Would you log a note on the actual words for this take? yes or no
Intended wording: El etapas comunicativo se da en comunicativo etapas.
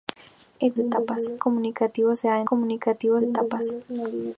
no